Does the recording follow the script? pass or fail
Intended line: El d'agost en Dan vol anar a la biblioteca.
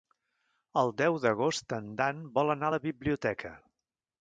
fail